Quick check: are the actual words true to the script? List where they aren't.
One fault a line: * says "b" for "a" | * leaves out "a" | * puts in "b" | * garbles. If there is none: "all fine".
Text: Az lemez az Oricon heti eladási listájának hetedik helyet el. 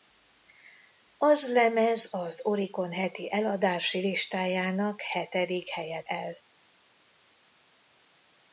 all fine